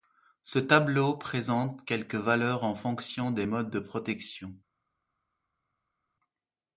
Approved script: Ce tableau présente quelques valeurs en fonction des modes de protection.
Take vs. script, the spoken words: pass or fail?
pass